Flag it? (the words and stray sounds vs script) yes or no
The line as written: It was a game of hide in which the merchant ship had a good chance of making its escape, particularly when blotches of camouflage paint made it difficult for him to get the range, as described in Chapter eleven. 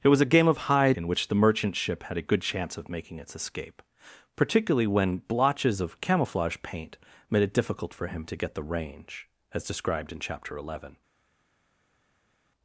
no